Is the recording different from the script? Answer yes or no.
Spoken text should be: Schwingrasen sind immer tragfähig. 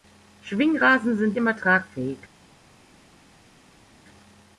no